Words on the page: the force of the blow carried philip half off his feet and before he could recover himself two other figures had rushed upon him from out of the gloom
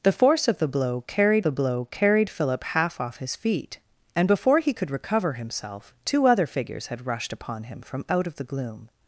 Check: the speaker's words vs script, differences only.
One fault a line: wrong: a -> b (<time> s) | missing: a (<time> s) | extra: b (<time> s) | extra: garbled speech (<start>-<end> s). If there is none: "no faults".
extra: the blow carried (1.4 s)